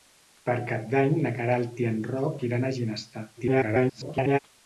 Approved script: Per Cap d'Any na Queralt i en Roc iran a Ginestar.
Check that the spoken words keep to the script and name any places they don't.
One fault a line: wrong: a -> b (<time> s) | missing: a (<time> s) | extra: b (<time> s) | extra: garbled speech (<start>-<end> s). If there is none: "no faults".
extra: garbled speech (3.4-4.4 s)